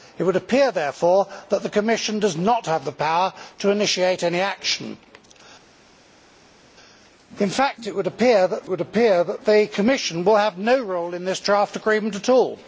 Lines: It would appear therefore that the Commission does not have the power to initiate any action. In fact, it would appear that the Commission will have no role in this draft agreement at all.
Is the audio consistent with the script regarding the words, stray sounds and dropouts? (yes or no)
no